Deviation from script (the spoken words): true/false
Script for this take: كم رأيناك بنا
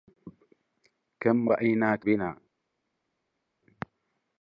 false